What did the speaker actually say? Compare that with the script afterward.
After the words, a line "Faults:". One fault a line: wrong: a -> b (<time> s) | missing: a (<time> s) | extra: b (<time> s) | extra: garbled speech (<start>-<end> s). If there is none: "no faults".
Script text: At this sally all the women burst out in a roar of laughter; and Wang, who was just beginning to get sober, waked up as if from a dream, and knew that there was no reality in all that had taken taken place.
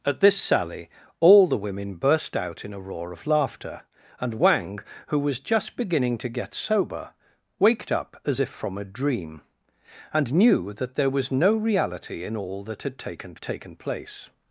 At this sally all the women burst out in a roar of laughter; and Wang, who was just beginning to get sober, waked up as if from a dream, and knew that there was no reality in all that had taken taken place.
Faults:
no faults